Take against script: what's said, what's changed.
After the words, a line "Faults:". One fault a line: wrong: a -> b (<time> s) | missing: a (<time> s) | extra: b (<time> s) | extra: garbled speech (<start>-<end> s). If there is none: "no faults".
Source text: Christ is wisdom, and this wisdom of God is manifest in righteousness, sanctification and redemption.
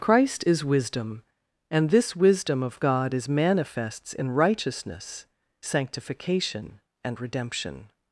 Christ is wisdom, and this wisdom of God is manifests in righteousness, sanctification and redemption.
Faults:
wrong: manifest -> manifests (3.3 s)